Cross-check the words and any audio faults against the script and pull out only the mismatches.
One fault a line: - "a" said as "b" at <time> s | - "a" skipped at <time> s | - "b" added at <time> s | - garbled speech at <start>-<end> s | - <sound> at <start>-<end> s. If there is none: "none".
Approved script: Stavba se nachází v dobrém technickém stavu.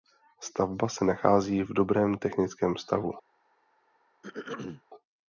- throat clearing at 4.2-4.8 s